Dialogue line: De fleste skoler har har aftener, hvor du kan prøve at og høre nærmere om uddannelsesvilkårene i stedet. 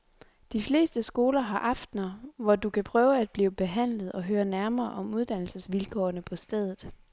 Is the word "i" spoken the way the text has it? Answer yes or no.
no